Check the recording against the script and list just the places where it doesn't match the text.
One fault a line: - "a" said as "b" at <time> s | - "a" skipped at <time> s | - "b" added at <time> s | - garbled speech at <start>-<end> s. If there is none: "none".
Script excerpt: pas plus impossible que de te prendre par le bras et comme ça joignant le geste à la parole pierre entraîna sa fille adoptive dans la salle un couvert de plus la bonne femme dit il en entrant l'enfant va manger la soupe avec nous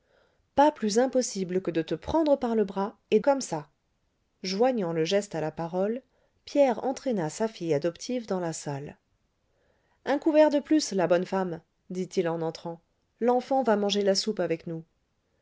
none